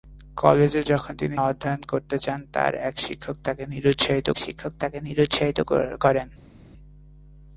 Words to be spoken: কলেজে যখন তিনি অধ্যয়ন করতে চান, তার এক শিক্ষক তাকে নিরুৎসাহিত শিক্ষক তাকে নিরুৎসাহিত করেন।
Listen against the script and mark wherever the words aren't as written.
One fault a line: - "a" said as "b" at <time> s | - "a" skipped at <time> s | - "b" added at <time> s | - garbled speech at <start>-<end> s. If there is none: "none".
none